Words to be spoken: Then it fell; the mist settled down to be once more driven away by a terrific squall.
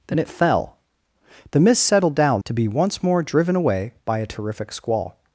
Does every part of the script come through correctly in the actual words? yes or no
yes